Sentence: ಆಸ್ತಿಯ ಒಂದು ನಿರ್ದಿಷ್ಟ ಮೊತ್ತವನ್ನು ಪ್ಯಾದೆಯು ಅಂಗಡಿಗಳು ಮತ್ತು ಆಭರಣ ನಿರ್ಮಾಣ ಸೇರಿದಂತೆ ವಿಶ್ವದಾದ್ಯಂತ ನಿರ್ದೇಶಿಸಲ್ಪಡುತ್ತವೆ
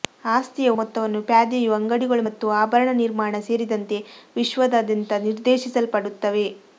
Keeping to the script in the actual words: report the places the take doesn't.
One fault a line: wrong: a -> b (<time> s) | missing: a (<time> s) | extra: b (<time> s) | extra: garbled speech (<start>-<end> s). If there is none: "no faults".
missing: ಒಂದು ನಿರ್ದಿಷ್ಟ (0.7 s)